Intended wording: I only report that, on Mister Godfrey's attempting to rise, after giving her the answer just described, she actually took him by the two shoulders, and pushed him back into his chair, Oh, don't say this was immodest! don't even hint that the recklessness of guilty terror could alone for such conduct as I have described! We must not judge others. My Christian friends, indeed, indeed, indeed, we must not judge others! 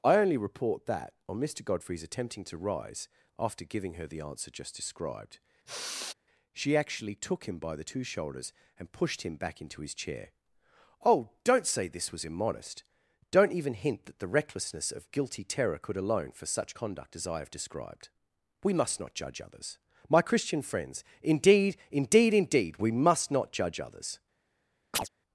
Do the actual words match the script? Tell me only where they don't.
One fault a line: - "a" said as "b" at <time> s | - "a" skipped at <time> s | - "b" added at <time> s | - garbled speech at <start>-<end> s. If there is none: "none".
none